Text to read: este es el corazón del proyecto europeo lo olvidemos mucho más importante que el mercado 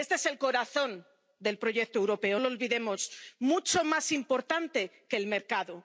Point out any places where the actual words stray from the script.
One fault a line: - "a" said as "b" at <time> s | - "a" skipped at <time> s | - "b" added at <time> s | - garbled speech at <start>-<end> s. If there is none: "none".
none